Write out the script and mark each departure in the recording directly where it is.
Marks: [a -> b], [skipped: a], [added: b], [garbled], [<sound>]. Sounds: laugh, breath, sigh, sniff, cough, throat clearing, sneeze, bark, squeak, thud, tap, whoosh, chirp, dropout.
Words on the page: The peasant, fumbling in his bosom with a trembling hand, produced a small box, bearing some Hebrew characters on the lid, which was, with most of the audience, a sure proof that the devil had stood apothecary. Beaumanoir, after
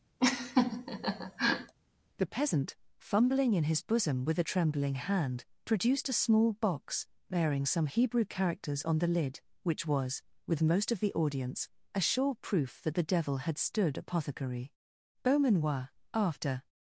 [laugh] The peasant, fumbling in his bosom with a trembling hand, produced a small box, bearing some Hebrew characters on the lid, which was, with most of the audience, a sure proof that the devil had stood apothecary. Beaumanoir, after